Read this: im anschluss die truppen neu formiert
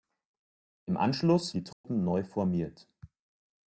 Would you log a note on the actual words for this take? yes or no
no